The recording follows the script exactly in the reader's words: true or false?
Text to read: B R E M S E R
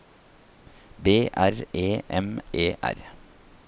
false